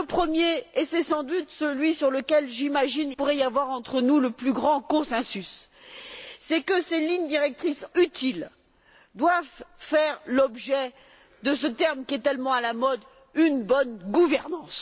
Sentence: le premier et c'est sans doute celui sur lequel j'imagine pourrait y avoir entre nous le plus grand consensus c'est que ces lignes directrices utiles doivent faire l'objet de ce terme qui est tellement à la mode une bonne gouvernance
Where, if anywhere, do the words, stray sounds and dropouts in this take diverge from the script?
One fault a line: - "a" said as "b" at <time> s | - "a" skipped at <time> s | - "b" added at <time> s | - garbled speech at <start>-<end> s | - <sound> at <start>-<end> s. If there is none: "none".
none